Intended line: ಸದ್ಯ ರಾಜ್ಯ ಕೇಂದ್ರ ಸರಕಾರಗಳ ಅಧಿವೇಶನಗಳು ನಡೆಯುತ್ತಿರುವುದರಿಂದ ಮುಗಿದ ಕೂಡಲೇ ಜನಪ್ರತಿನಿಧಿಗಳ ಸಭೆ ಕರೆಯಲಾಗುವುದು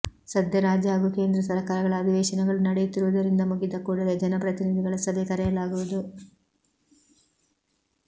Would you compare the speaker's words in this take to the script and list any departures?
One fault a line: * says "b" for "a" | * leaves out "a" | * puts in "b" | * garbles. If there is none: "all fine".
* puts in "ಹಾಗೂ"